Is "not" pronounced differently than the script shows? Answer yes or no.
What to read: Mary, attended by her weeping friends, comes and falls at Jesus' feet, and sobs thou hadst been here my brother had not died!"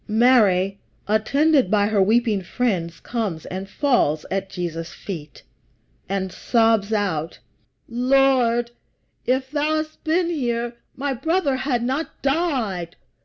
no